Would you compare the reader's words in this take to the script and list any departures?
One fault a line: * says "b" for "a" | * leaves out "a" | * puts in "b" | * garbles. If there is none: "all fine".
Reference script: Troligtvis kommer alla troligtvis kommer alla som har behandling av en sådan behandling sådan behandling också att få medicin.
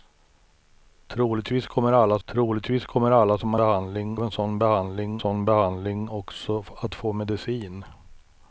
all fine